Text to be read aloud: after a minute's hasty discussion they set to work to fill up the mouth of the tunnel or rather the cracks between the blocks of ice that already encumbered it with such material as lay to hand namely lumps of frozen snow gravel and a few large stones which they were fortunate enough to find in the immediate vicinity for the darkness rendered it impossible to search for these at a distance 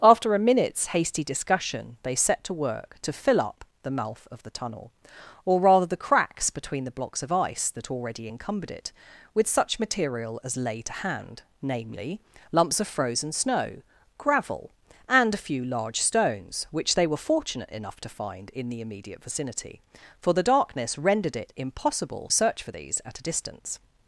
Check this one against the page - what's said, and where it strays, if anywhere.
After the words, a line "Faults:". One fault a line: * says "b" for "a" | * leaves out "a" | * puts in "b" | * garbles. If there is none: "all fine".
after a minute's hasty discussion they set to work to fill up the mouth of the tunnel or rather the cracks between the blocks of ice that already encumbered it with such material as lay to hand namely lumps of frozen snow gravel and a few large stones which they were fortunate enough to find in the immediate vicinity for the darkness rendered it impossible search for these at a distance
Faults:
* leaves out "to"